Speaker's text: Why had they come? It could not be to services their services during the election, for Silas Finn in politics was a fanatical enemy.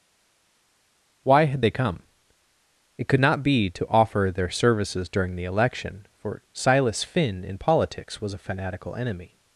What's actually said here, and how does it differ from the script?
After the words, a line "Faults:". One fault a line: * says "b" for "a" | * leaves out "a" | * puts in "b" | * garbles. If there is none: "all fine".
Why had they come? It could not be to offer their services during the election, for Silas Finn in politics was a fanatical enemy.
Faults:
* says "offer" for "services"